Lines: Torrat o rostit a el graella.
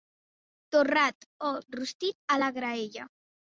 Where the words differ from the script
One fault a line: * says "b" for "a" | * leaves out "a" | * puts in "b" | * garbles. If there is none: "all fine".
* says "la" for "el"